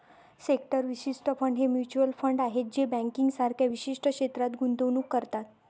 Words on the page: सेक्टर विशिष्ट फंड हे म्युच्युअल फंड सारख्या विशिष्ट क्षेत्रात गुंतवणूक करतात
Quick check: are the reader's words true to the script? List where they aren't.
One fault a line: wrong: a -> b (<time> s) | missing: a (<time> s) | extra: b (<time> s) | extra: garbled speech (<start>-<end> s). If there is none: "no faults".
extra: आहेत जे बँकिंग (2.4 s)